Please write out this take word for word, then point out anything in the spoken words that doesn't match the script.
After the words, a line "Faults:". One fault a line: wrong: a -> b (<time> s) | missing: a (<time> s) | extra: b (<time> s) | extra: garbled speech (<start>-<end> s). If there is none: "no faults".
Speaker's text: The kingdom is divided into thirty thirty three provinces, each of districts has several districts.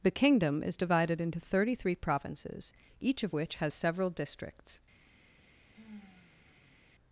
The kingdom is divided into thirty three provinces, each of which has several districts.
Faults:
missing: thirty (1.8 s)
wrong: districts -> which (3.3 s)